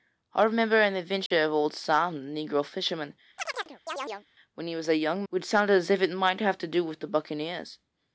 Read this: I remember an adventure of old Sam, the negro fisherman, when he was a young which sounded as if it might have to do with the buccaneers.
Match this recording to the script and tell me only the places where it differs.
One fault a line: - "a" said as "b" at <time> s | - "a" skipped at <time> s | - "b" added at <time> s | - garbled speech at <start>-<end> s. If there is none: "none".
none